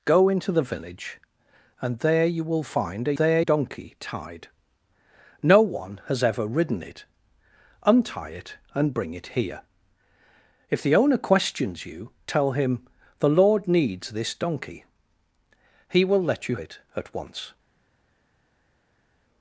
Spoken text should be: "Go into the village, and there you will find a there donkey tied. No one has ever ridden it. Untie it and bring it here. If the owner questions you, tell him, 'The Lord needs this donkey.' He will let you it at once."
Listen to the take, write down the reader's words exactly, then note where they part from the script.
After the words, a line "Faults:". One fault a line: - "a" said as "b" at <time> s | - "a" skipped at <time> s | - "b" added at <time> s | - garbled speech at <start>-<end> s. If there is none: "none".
"Go into the village, and there you will find a there donkey tied. No one has ever ridden it. Untie it and bring it here. If the owner questions you, tell him, 'The Lord needs this donkey.' He will let you it at once."
Faults:
none